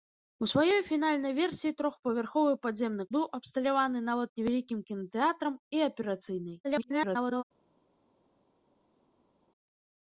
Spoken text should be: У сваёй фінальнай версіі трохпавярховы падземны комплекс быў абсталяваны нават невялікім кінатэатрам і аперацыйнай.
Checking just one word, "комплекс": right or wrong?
wrong